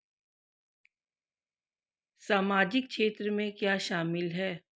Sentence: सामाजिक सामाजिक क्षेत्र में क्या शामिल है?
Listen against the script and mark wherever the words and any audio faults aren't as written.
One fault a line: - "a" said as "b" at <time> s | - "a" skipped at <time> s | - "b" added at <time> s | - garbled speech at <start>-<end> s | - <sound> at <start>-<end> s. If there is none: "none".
- "सामाजिक" skipped at 2.9 s